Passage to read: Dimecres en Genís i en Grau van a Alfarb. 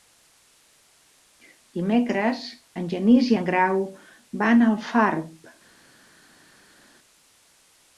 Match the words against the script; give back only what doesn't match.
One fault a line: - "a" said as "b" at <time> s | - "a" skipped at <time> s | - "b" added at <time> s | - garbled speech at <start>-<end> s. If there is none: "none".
none